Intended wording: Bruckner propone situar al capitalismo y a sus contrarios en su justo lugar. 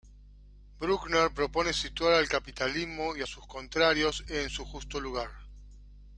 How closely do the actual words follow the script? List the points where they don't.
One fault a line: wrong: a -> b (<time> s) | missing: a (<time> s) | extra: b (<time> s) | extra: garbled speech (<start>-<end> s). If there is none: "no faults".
no faults